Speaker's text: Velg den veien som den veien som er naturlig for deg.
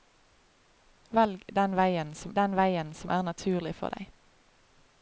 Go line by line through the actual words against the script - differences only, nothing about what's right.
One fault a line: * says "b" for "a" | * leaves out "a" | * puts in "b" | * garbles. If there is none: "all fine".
all fine